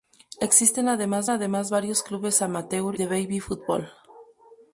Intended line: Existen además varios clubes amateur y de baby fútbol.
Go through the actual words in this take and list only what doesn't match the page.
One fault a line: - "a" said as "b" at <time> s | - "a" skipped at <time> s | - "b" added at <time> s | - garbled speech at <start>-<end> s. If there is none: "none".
- "además" added at 1.3 s
- "y" skipped at 3.0 s